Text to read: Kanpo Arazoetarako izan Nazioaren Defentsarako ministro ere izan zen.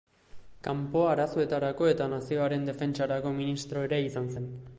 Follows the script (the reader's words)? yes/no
no